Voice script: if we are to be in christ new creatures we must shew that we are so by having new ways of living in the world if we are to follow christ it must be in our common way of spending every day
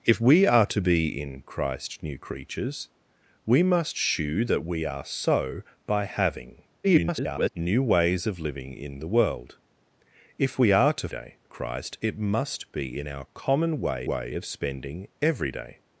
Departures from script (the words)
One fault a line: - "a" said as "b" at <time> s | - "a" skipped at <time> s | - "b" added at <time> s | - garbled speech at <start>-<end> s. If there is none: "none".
- garbled speech at 6.8-7.5 s
- "follow" said as "day" at 11.1 s
- "way" added at 14.1 s